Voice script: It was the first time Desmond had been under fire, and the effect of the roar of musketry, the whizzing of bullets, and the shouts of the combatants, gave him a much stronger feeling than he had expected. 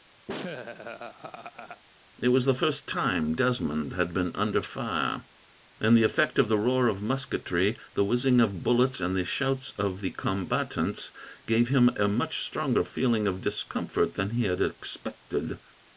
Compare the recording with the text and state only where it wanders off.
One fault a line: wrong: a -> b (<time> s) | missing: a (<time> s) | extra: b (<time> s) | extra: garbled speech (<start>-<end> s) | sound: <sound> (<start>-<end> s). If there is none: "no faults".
sound: laugh (0.3-1.8 s)
extra: of discomfort (13.3 s)